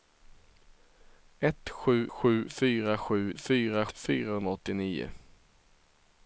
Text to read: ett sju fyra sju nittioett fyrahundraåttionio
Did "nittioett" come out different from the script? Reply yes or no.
yes